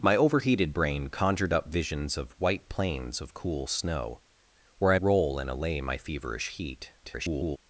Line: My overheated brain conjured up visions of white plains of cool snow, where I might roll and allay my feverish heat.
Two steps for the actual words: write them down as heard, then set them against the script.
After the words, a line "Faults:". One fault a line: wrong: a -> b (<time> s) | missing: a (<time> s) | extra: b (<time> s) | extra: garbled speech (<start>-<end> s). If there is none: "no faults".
My overheated brain conjured up visions of white plains of cool snow, where I roll and allay my feverish heat. [garbled]
Faults:
missing: might (5.0 s)
extra: garbled speech (7.0-7.6 s)